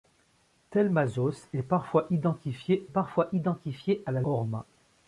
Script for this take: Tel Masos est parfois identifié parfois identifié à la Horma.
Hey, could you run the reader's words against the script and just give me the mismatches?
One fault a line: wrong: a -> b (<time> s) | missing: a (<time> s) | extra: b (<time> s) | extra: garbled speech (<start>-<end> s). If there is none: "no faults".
no faults